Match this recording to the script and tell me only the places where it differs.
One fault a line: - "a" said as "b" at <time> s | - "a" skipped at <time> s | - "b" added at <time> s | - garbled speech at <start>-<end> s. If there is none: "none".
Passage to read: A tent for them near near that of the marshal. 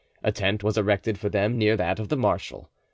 - "was erected" added at 0.6 s
- "near" skipped at 1.8 s